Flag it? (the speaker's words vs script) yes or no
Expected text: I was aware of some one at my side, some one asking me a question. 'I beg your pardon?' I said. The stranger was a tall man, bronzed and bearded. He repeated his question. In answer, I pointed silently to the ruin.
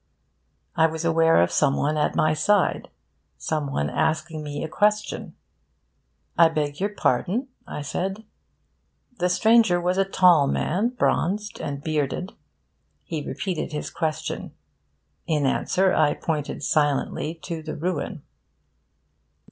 no